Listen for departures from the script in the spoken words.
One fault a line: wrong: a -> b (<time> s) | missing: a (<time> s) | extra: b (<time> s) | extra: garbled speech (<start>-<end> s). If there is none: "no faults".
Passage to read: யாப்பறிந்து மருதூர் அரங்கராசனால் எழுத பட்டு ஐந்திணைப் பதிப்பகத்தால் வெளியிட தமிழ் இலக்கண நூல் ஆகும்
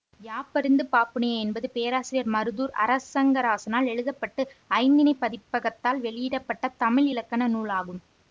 extra: பாப்புனைய என்பது பேராசிரியர் (0.9 s)
extra: பட்ட (6.4 s)